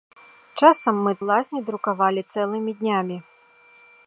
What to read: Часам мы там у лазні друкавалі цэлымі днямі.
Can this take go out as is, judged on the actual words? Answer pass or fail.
fail